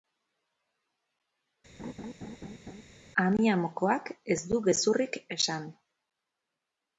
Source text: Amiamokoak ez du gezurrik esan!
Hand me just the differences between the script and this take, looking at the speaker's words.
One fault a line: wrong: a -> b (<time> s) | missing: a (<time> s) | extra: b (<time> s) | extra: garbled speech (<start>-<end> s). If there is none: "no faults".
no faults